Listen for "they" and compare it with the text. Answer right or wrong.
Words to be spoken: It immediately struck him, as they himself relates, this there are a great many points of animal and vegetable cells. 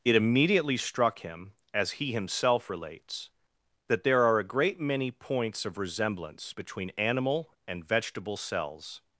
wrong